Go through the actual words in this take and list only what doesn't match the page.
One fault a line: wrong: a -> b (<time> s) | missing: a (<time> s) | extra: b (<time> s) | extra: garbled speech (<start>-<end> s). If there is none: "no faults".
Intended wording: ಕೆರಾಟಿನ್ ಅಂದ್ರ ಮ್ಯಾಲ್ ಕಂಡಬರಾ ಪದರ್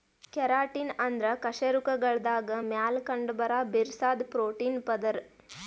extra: ಕಶೇರುಕಗಳ್ದಾಗ (1.4 s)
extra: ಬಿರ್ಸಾದ್ ಪ್ರೋಟೀನ್ (3.7 s)